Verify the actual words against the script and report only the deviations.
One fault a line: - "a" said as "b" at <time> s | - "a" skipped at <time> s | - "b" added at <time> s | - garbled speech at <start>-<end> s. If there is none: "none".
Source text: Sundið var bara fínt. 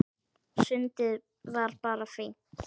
none